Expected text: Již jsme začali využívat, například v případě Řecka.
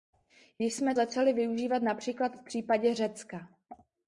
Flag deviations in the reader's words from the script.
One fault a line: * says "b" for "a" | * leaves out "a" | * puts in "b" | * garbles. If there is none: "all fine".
all fine